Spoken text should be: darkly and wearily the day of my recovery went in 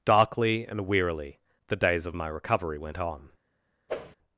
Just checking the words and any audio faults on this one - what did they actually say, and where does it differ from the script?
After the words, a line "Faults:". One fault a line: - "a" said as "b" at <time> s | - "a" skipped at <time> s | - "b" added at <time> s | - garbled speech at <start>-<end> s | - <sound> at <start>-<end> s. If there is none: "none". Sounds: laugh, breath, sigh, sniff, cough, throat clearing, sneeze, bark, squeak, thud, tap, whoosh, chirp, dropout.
darkly and wearily the days of my recovery went on
Faults:
- "day" said as "days" at 1.8 s
- "in" said as "on" at 3.0 s
- whoosh at 3.9-4.2 s